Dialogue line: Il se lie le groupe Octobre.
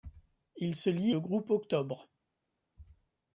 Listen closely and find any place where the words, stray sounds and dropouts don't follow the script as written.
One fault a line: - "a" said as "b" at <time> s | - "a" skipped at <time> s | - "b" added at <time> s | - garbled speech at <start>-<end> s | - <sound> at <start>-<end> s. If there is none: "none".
none